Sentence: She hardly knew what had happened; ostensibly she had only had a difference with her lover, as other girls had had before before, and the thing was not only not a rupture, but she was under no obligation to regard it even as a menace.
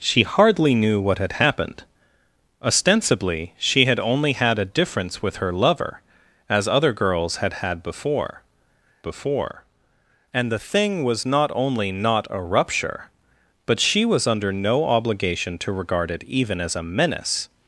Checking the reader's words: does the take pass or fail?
pass